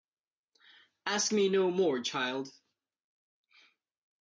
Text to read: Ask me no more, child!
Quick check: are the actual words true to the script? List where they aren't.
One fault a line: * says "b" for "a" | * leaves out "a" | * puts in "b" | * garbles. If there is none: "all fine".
all fine